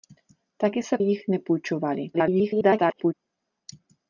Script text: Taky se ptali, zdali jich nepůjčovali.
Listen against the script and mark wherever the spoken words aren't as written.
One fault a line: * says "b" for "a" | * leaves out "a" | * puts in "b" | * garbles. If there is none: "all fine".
* leaves out "ptali zdali"
* garbles